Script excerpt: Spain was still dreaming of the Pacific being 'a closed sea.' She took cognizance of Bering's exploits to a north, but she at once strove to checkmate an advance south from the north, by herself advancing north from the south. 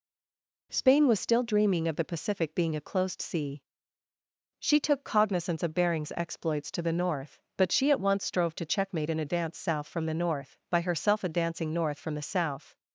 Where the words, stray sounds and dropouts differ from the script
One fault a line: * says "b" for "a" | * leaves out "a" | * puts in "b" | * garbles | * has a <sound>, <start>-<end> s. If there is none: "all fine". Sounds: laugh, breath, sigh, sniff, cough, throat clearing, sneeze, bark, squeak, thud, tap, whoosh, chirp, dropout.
* says "the" for "a"